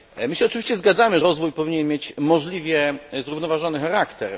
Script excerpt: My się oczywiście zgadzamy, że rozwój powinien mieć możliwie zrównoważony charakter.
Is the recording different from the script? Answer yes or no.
yes